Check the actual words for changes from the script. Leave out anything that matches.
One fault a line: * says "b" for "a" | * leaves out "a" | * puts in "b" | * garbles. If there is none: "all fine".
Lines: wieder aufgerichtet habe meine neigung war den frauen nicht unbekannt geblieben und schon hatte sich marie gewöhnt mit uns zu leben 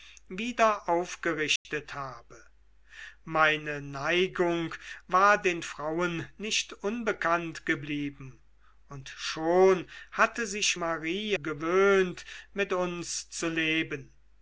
all fine